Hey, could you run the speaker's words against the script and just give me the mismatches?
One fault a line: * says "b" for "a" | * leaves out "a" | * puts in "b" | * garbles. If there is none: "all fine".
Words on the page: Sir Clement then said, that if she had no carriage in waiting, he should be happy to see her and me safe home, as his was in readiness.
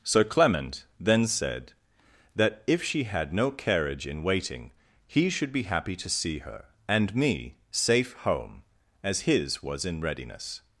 all fine